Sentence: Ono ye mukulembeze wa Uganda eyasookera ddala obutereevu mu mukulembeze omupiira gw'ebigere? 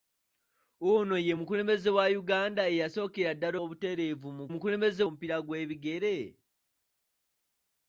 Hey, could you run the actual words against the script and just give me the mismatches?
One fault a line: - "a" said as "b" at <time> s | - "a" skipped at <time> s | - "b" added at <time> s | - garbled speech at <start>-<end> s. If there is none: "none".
none